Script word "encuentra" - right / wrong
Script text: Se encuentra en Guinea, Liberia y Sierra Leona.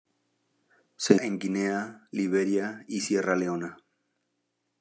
wrong